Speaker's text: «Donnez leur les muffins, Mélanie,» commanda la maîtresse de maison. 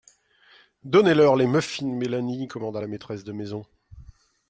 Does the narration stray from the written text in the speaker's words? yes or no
no